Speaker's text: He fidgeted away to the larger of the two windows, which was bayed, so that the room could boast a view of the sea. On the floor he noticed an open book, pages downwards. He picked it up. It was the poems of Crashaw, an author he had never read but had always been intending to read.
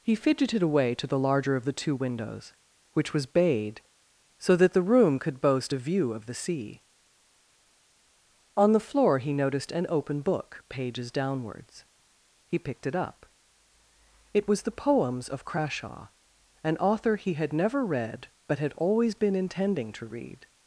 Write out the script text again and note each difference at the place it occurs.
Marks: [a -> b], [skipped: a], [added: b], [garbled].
He fidgeted away to the larger of the two windows, which was bayed, so that the room could boast a view of the sea. On the floor he noticed an open book, pages downwards. He picked it up. It was the poems of Crashaw, an author he had never read but had always been intending to read.